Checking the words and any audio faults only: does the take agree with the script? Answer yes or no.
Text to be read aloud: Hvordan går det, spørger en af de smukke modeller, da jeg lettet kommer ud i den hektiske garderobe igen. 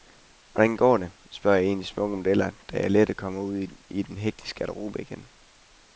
yes